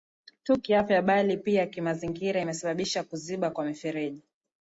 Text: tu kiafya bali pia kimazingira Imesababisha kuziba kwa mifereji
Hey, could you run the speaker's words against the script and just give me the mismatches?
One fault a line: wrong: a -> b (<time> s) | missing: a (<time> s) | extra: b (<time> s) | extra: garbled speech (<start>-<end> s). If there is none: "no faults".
no faults